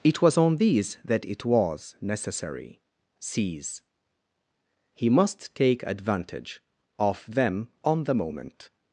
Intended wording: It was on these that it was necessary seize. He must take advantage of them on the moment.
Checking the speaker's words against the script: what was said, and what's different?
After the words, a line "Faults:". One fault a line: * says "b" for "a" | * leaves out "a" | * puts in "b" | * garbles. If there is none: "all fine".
It was on these that it was necessary seize. He must take advantage of them on the moment.
Faults:
all fine